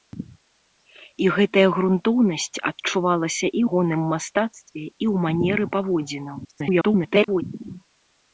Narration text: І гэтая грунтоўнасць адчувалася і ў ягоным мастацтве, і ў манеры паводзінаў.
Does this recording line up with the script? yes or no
no